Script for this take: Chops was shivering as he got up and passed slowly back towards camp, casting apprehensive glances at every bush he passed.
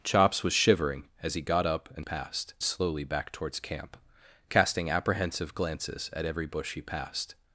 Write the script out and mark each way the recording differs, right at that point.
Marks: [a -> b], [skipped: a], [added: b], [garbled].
Chops was shivering as he got up and passed slowly back towards camp, casting apprehensive glances at every bush he passed.